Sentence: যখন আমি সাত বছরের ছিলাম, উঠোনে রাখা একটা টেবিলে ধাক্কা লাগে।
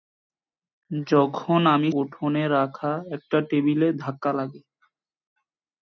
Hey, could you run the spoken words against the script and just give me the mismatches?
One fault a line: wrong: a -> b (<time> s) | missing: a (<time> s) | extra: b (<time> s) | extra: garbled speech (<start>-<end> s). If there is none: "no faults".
missing: সাত বছরের ছিলাম (1.9 s)